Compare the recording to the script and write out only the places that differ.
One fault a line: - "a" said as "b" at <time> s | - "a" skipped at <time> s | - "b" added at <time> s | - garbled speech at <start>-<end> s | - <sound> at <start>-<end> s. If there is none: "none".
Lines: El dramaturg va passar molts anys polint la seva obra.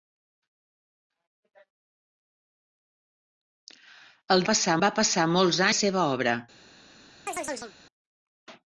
- "dramaturg" said as "passar" at 4.5 s
- "anys polint" skipped at 5.6 s
- chirp at 7.3-7.7 s